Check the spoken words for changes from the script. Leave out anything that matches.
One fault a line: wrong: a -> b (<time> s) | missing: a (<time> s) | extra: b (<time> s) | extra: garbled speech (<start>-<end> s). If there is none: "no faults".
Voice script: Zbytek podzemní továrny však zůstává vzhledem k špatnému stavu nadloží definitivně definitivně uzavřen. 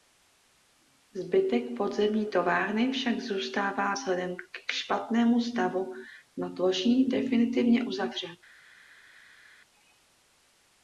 missing: definitivně (7.8 s)